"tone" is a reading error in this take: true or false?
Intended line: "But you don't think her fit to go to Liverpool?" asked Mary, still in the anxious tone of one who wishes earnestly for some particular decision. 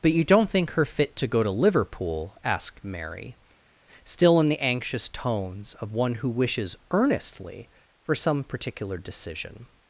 true